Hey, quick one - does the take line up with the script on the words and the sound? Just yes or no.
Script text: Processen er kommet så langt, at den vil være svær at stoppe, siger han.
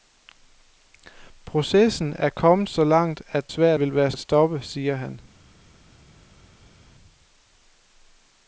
no